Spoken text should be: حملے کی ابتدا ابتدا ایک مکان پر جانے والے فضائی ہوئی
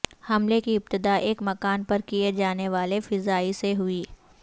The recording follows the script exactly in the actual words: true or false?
false